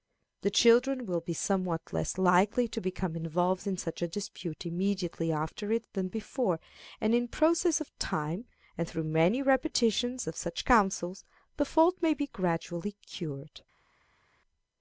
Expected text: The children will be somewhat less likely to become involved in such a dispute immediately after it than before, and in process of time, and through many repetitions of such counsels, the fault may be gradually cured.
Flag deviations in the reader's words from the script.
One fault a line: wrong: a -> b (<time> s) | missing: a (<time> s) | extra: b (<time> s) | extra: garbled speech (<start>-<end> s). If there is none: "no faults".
no faults